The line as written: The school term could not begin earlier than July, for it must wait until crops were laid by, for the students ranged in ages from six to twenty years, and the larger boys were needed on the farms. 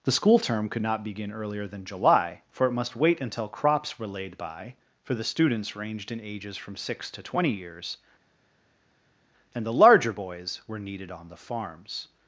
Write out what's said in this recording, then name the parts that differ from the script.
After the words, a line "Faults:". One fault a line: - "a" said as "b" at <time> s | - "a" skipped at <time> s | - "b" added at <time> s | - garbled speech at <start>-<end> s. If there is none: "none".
The school term could not begin earlier than July, for it must wait until crops were laid by, for the students ranged in ages from six to twenty years, and the larger boys were needed on the farms.
Faults:
none